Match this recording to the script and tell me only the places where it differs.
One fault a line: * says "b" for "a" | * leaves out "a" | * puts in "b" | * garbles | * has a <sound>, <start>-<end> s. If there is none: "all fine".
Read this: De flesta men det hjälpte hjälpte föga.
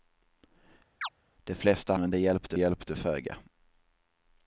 * has a chirp, 1.0-1.1 s